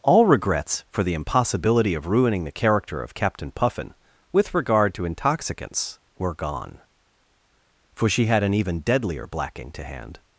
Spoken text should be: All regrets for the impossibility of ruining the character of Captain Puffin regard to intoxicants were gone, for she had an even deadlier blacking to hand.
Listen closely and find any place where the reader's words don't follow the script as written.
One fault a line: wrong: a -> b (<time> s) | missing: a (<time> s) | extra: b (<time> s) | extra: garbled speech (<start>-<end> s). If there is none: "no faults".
extra: with (4.3 s)